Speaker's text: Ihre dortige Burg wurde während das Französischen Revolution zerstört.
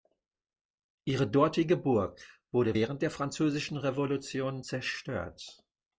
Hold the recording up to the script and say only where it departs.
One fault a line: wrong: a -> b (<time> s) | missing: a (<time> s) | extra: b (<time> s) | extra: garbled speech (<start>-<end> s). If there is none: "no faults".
wrong: das -> der (3.0 s)